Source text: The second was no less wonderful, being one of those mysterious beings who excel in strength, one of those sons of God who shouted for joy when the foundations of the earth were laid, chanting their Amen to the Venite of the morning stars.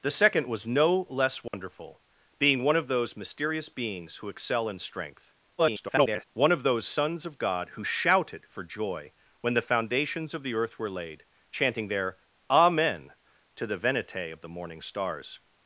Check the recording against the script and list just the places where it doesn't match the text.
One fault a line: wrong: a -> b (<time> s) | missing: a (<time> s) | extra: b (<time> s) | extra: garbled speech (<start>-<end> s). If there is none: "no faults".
extra: garbled speech (5.6-6.2 s)